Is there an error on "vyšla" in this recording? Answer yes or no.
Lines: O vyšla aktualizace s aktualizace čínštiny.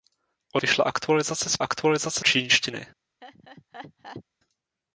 no